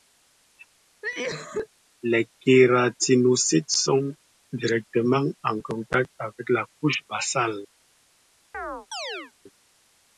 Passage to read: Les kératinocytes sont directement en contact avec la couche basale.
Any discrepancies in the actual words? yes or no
no